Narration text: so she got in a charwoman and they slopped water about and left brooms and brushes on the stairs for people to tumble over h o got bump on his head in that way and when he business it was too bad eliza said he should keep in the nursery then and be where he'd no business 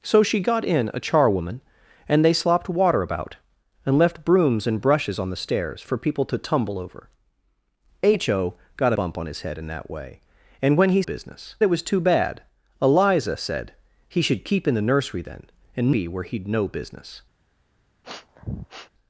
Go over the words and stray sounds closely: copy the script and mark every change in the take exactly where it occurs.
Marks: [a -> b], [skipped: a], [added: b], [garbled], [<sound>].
so she got in a charwoman and they slopped water about and left brooms and brushes on the stairs for people to tumble over h o got bump on his head in that way and when he business it was too bad eliza said he should keep in the nursery then and be where he'd no business [sniff]